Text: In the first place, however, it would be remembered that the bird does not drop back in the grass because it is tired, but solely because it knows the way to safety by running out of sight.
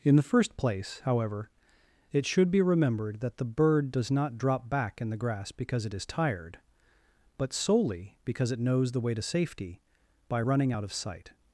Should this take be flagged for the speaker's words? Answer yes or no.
yes